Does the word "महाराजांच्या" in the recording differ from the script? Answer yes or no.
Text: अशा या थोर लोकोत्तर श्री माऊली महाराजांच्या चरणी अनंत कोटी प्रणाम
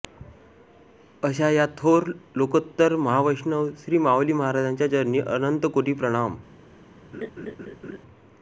no